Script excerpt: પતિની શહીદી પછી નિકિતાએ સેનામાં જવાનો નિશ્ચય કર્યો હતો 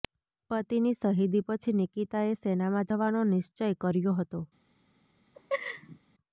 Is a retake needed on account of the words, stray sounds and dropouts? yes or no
yes